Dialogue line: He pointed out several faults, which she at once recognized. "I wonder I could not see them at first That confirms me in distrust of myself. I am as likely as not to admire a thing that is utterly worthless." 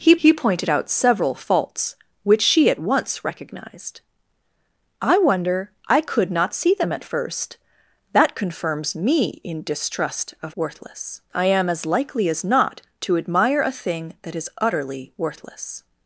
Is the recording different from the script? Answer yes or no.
yes